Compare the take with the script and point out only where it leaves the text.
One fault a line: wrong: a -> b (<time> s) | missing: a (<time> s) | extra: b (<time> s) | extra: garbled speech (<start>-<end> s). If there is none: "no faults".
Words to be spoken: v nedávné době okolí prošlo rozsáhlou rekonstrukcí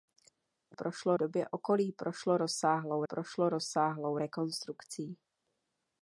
wrong: nedávné -> prošlo (0.7 s)
extra: prošlo rozsáhlou (3.0 s)